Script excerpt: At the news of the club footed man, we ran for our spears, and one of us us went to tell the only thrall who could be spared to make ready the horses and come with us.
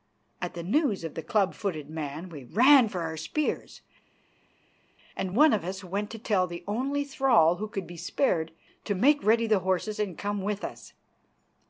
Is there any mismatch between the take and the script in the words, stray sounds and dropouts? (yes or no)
yes